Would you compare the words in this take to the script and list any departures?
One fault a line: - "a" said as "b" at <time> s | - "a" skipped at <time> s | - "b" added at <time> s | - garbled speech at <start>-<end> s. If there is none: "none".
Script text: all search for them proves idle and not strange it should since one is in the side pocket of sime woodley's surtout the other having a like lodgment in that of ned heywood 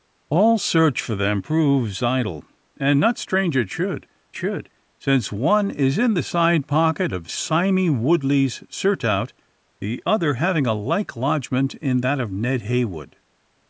- "should" added at 4.3 s